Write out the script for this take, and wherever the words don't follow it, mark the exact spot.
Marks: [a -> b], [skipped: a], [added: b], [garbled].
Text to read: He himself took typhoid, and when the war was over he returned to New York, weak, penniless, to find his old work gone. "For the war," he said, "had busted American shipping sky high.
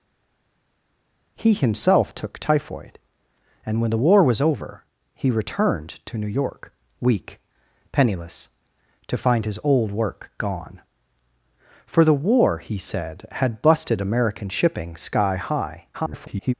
He himself took typhoid, and when the war was over he returned to New York, weak, penniless, to find his old work gone. "For the war," he said, "had busted American shipping sky high. [garbled]